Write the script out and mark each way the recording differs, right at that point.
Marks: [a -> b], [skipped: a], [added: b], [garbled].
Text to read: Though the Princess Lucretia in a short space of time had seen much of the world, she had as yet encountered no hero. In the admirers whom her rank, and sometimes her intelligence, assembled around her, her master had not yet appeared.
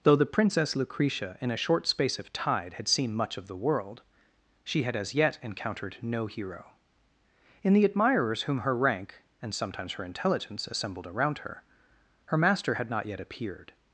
Though the Princess Lucretia in a short space of [time -> tide] had seen much of the world, she had as yet encountered no hero. In the admirers whom her rank, and sometimes her intelligence, assembled around her, her master had not yet appeared.